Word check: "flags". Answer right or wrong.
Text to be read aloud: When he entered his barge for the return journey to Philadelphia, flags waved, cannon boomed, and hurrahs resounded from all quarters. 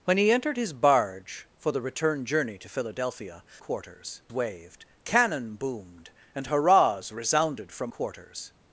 wrong